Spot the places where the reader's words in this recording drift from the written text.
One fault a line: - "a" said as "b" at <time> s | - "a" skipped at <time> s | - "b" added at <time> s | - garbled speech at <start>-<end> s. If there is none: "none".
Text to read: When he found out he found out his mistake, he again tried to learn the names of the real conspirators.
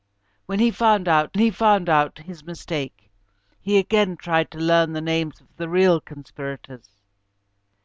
none